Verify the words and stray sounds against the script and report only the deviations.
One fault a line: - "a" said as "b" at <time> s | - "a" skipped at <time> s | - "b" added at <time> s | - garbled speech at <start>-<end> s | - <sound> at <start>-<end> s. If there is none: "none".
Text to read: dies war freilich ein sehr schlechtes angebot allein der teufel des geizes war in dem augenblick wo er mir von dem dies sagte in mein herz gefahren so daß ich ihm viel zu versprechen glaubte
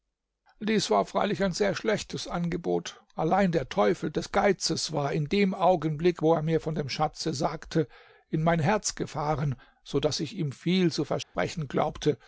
- "dies" said as "schatze" at 6.9 s
- dropout at 11.2-11.4 s